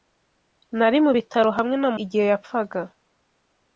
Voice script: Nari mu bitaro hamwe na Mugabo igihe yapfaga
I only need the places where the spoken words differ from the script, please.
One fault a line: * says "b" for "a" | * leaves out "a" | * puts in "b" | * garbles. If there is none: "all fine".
* leaves out "Mugabo"